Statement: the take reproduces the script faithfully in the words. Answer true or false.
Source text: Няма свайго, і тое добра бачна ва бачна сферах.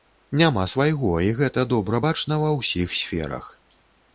false